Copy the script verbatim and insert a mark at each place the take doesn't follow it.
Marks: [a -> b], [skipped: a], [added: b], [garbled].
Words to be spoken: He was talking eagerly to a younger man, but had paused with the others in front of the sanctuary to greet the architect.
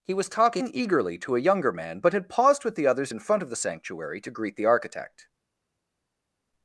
He was talking eagerly to a younger man, but had paused with the others in front of the sanctuary to greet the architect.